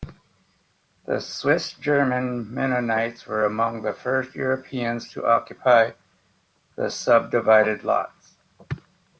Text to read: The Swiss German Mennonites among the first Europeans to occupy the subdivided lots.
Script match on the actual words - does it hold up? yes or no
no